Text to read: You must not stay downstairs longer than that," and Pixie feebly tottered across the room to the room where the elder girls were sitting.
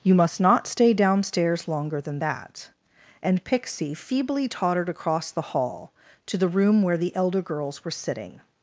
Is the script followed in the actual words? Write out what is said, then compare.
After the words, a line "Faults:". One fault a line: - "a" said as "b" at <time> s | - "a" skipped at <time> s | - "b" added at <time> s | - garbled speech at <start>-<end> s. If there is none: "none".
You must not stay downstairs longer than that," and Pixie feebly tottered across the hall to the room where the elder girls were sitting.
Faults:
- "room" said as "hall" at 5.4 s